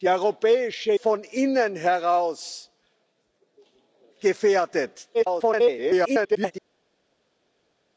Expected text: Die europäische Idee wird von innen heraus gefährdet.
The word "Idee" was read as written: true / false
false